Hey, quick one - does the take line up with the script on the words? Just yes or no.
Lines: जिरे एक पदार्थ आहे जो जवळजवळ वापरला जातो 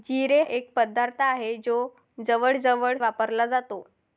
yes